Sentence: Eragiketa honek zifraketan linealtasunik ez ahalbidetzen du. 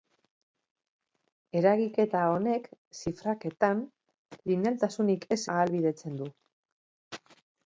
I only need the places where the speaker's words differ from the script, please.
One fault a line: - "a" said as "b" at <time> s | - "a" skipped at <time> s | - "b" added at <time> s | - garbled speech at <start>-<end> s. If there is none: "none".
none